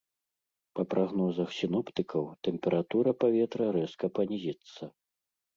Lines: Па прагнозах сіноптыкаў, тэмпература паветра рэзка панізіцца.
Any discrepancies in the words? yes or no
no